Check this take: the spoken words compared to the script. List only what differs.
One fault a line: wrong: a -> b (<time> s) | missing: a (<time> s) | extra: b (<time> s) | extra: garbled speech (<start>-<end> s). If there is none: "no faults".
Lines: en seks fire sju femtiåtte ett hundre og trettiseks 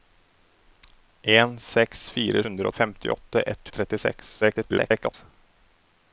wrong: sju -> hundre (2.4 s)
missing: hundre (3.7 s)
extra: garbled speech (4.4-5.1 s)